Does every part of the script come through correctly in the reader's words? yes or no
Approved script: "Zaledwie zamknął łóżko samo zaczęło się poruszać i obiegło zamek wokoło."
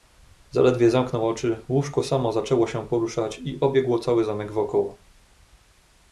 no